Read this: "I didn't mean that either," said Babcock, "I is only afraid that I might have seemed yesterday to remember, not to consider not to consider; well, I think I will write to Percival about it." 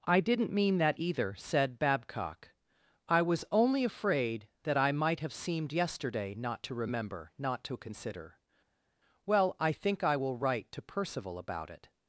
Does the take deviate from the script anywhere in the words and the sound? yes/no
yes